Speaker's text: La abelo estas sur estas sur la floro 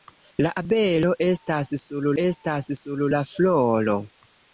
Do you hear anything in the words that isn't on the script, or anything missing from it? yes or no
no